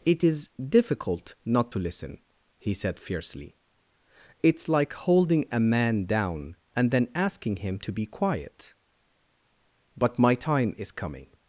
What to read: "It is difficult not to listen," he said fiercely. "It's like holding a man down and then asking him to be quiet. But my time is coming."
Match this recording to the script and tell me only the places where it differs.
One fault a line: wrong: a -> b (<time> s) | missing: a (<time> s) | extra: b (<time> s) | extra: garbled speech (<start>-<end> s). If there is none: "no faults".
no faults